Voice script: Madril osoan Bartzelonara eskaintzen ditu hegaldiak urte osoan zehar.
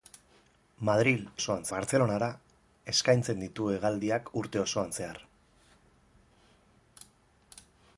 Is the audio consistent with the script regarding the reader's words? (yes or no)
yes